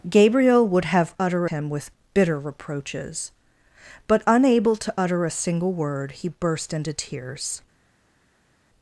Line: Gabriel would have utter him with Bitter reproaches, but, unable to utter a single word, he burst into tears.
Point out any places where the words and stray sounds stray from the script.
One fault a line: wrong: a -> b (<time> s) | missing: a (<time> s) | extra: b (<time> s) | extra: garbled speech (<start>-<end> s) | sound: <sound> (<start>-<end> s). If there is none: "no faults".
no faults